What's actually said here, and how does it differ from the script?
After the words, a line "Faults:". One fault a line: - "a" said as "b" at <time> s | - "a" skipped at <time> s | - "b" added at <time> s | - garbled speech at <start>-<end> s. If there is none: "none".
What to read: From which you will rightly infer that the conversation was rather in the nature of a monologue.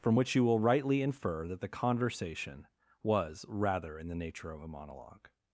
From which you will rightly infer that the conversation was rather in the nature of a monologue.
Faults:
none